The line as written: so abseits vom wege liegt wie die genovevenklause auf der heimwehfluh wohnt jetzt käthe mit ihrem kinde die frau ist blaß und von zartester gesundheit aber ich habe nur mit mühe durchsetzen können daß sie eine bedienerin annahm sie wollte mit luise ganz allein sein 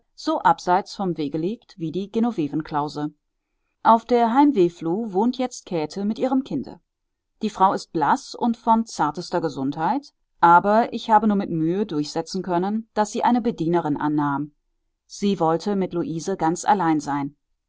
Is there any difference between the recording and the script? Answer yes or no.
no